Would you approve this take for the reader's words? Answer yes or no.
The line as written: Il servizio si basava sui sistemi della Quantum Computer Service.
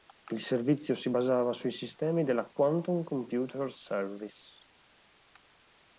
yes